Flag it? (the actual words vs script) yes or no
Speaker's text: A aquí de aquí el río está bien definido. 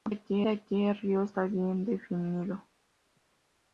no